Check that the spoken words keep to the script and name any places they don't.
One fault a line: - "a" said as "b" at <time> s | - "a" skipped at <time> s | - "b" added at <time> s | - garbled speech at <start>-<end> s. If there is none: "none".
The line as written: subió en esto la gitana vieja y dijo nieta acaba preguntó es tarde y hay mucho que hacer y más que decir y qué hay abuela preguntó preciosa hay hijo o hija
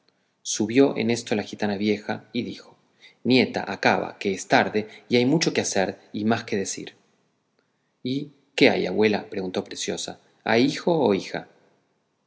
- "preguntó" said as "que" at 4.2 s